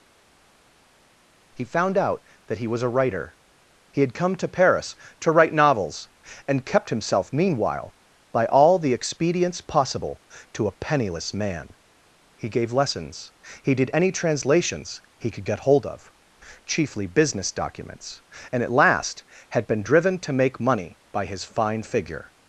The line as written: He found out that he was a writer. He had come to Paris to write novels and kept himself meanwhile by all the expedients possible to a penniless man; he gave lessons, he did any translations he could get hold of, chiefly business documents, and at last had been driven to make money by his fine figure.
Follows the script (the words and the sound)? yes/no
yes